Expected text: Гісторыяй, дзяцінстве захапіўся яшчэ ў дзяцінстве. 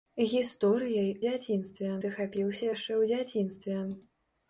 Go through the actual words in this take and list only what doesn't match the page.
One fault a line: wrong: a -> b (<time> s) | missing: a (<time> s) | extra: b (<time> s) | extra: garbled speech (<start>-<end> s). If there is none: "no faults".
no faults